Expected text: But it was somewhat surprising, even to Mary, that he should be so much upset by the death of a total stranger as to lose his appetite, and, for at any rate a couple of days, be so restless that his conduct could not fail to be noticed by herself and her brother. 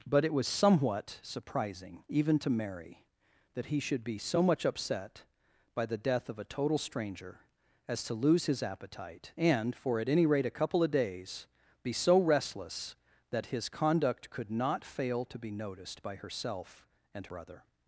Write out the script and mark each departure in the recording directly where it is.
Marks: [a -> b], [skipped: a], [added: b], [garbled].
But it was somewhat surprising, even to Mary, that he should be so much upset by the death of a total stranger as to lose his appetite, and, for at any rate a couple of days, be so restless that his conduct could not fail to be noticed by herself and [skipped: her] brother.